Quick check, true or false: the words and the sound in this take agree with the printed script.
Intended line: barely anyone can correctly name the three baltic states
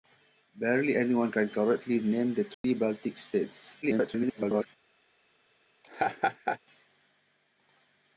false